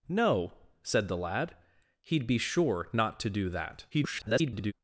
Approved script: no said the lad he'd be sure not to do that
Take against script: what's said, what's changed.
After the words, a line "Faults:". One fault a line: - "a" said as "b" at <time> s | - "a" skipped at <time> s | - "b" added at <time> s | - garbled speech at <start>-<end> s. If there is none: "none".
no said the lad he'd be sure not to do that [garbled]
Faults:
- garbled speech at 3.9-4.7 s